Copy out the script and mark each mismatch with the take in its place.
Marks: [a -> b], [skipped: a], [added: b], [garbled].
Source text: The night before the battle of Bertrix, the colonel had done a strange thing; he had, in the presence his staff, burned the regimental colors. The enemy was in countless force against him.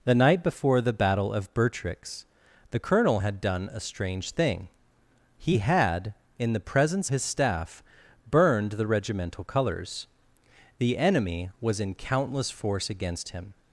The night before the battle of Bertrix, the colonel had done a strange thing; he had, in the presence his staff, burned the regimental colors. The enemy was in countless force against him.